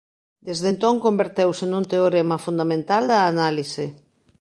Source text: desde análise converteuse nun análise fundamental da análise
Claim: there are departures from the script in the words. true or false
true